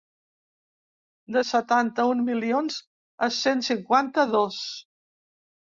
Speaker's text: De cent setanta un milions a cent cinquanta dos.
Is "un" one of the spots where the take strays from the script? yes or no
no